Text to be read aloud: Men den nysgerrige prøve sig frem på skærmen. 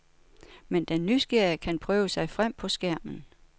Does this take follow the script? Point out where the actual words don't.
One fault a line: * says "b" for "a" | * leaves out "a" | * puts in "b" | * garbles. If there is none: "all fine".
* puts in "kan"